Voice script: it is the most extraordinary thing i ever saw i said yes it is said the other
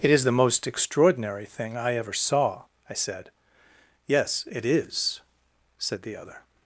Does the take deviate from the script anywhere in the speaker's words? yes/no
no